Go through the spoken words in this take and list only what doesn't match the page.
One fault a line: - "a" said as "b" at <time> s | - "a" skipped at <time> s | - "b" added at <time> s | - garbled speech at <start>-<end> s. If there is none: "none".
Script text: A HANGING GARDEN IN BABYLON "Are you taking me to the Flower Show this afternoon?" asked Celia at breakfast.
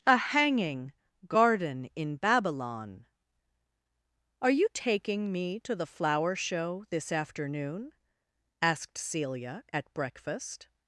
none